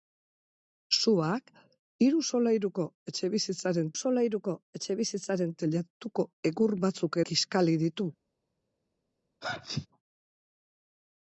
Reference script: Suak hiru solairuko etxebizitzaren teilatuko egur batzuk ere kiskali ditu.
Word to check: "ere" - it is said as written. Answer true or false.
false